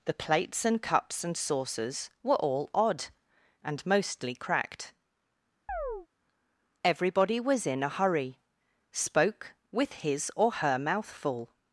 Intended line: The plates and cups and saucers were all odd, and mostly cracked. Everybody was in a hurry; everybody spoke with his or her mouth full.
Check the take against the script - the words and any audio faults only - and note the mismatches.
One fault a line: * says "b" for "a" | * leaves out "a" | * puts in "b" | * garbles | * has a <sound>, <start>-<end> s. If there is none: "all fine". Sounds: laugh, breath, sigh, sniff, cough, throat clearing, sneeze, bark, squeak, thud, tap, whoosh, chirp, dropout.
* has a chirp, 5.7-6.1 s
* leaves out "everybody"